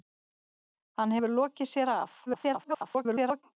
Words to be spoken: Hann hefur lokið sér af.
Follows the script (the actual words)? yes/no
no